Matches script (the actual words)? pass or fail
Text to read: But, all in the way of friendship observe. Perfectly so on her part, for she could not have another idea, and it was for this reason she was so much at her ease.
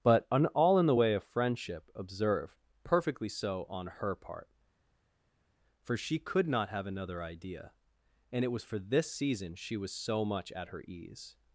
fail